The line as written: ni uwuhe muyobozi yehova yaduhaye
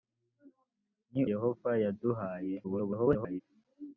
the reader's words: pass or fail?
fail